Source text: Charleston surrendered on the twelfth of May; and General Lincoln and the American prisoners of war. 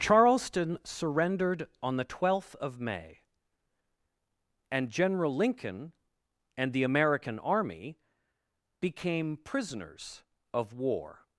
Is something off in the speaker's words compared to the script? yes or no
yes